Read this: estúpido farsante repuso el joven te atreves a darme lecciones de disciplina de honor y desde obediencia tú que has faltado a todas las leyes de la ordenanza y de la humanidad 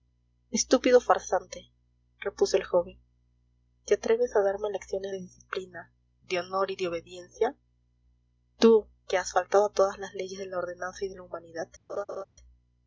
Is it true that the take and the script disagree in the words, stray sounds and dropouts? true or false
true